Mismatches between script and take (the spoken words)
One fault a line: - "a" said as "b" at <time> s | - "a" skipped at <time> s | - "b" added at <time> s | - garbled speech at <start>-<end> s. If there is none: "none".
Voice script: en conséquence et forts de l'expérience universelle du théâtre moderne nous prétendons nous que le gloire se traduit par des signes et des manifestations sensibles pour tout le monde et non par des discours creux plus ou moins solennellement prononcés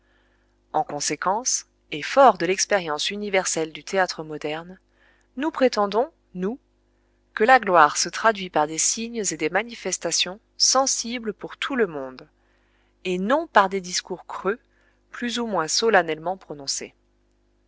- "le" said as "la" at 7.4 s